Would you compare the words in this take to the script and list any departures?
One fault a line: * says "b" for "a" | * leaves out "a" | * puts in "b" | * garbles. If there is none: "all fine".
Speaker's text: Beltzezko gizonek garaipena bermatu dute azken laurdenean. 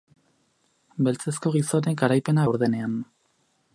* leaves out "bermatu dute azken"